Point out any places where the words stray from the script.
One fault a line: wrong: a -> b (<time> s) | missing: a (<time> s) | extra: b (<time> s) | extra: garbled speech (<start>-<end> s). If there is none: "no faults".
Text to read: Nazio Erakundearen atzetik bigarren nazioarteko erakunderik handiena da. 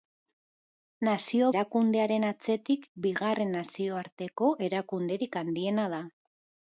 no faults